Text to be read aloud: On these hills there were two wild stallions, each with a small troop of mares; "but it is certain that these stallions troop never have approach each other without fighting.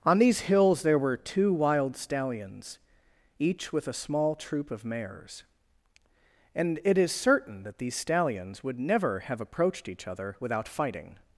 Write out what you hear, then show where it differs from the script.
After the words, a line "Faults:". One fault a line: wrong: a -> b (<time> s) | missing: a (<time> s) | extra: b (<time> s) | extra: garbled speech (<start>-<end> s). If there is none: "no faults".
On these hills there were two wild stallions, each with a small troop of mares; "and it is certain that these stallions would never have approached each other without fighting.
Faults:
wrong: but -> and (6.5 s)
wrong: troop -> would (8.6 s)
wrong: approach -> approached (9.4 s)